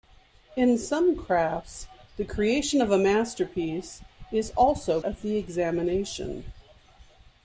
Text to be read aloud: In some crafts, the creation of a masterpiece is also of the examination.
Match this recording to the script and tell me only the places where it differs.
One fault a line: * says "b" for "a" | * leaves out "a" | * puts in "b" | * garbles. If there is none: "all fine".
all fine